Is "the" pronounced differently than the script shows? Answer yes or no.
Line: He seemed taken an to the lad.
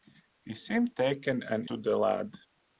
no